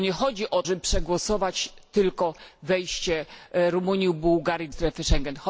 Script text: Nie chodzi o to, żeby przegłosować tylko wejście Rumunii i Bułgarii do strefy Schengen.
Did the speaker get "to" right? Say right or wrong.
wrong